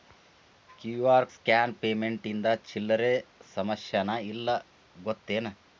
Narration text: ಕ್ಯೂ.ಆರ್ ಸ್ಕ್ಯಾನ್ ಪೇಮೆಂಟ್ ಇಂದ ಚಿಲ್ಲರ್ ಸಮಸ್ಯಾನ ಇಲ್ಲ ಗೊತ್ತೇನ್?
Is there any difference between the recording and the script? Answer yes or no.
no